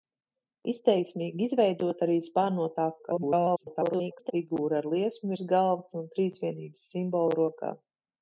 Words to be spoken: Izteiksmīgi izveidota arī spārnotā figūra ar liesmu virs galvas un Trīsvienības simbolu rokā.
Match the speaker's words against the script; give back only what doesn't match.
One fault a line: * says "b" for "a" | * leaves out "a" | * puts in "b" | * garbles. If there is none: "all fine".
* garbles